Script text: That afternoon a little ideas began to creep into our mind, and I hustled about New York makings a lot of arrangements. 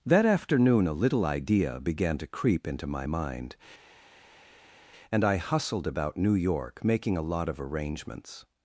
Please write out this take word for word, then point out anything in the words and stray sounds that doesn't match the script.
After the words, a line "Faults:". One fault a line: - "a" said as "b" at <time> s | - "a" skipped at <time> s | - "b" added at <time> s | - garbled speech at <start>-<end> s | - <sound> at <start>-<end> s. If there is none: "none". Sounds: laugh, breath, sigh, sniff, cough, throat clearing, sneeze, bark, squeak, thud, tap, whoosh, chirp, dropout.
That afternoon a little idea began to creep into my mind, and I hustled about New York making a lot of arrangements.
Faults:
- "ideas" said as "idea" at 1.3 s
- "our" said as "my" at 2.9 s
- "makings" said as "making" at 6.8 s